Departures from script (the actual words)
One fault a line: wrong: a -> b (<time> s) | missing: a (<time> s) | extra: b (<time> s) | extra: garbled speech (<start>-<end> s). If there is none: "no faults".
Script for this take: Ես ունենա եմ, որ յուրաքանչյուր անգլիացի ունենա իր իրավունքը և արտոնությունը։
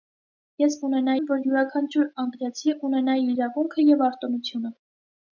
no faults